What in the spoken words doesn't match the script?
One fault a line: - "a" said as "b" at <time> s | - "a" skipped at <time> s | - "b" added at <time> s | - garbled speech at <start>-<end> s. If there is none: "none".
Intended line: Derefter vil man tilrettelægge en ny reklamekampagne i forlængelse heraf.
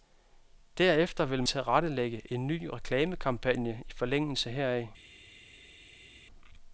- "man" skipped at 1.4 s